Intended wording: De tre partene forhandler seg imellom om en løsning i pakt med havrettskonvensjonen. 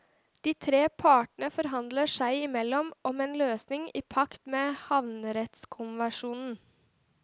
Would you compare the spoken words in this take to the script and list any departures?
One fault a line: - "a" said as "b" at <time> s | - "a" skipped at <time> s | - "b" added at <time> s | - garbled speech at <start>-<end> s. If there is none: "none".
none